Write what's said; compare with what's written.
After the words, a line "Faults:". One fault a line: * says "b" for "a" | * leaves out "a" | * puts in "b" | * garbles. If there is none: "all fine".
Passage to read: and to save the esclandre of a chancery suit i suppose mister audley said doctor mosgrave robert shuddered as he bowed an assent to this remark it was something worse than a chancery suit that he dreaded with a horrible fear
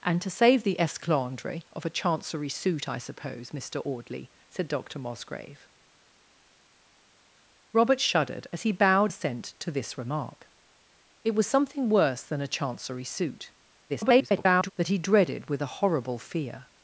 and to save the esclandre of a chancery suit i suppose mister audley said doctor mosgrave robert shuddered as he bowed assent to this remark it was something worse than a chancery suit [garbled] that he dreaded with a horrible fear
Faults:
* leaves out "an"
* garbles